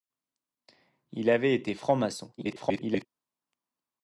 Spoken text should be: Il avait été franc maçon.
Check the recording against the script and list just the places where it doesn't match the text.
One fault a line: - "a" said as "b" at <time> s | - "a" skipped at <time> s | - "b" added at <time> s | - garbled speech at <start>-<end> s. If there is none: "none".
- garbled speech at 2.4-3.1 s